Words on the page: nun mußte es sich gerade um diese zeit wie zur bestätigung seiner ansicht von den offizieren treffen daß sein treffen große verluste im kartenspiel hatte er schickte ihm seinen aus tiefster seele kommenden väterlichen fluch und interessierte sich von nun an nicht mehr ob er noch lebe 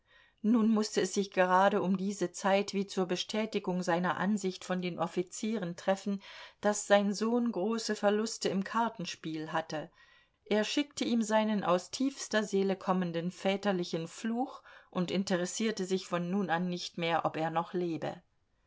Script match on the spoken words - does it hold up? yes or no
no